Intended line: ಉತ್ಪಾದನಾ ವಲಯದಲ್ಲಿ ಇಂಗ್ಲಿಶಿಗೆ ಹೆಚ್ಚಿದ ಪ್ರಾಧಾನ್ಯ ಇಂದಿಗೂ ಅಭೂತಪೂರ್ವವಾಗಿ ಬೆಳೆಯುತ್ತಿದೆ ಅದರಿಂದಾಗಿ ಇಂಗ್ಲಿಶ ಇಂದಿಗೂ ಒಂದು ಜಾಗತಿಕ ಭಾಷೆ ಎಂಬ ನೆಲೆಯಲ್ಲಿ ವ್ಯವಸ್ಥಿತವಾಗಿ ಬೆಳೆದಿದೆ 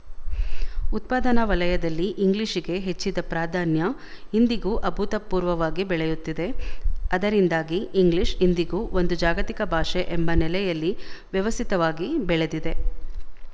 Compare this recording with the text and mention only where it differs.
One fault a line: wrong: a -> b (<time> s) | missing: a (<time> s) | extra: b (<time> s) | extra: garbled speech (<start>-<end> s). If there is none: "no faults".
no faults